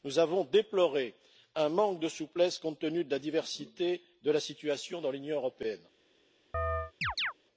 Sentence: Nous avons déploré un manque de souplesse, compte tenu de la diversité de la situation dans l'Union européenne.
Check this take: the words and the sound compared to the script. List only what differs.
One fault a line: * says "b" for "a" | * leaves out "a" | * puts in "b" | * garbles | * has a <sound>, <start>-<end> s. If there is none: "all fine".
* has a chirp, 6.5-7.3 s